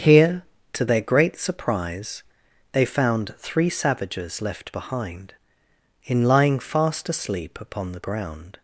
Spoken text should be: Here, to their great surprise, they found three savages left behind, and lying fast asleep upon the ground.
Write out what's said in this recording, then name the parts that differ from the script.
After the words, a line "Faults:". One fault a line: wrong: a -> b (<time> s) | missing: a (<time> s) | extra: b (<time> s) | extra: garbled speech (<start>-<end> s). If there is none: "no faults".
Here, to their great surprise, they found three savages left behind, in lying fast asleep upon the ground.
Faults:
wrong: and -> in (6.1 s)